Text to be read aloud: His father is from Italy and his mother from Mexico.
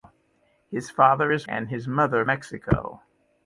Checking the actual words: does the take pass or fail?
fail